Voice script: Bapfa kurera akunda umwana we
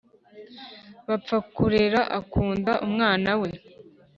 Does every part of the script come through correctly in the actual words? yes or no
yes